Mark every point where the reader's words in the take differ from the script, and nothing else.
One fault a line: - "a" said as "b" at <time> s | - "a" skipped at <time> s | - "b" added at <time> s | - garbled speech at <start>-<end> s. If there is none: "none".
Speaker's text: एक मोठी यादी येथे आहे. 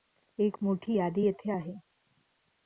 none